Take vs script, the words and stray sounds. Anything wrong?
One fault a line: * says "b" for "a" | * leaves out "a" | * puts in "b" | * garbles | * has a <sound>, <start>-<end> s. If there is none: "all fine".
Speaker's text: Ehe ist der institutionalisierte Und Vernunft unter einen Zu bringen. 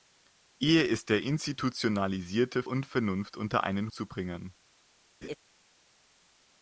* has a laugh, 5.2-5.4 s